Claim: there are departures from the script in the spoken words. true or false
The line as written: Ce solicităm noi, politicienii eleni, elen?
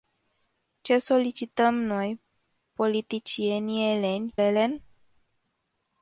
false